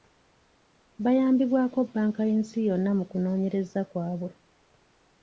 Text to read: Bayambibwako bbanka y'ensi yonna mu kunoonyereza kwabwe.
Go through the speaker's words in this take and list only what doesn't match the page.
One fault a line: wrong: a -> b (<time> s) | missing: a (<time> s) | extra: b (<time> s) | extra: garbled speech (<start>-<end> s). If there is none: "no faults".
no faults